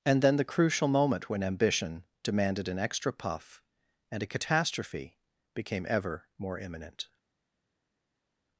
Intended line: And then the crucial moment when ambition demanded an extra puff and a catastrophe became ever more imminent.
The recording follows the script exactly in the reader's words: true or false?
true